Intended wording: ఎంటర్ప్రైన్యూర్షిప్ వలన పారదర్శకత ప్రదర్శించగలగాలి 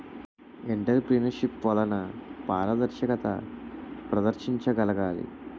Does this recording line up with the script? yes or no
yes